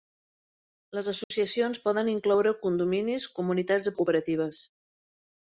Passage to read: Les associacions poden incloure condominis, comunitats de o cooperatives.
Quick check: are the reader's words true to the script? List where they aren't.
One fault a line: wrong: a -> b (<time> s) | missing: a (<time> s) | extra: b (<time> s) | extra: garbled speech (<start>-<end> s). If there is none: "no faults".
no faults